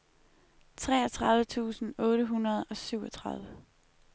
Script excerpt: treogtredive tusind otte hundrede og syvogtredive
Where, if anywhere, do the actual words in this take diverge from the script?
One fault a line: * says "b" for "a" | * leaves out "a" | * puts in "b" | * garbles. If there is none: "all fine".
all fine